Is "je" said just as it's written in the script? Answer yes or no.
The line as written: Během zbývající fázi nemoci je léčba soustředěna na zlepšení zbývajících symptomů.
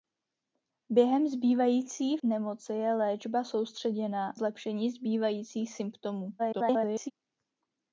yes